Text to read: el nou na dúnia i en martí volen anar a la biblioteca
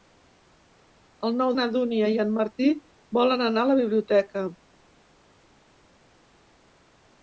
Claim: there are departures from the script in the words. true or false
false